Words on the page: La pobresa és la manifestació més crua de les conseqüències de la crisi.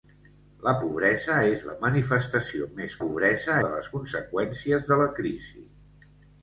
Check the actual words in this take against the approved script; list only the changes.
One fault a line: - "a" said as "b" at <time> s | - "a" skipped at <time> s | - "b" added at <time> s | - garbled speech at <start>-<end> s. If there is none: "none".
- "crua" said as "pobresa" at 3.0 s